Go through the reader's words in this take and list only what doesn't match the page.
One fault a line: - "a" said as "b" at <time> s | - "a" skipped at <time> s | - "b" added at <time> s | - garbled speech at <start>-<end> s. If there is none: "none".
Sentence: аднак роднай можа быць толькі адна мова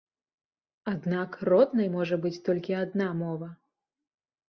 none